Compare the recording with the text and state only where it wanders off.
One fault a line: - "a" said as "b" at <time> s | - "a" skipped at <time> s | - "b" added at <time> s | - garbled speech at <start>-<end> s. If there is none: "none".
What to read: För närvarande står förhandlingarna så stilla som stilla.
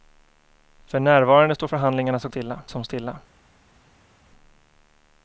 none